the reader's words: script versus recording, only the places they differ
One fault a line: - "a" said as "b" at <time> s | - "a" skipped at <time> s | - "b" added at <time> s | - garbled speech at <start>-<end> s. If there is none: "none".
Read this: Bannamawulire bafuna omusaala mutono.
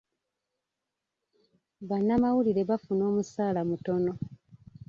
none